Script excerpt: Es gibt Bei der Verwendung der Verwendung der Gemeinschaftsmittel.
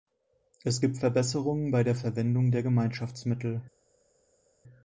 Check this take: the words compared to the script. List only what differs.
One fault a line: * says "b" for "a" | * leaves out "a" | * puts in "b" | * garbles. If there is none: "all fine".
* puts in "Verbesserungen"
* leaves out "Verwendung der"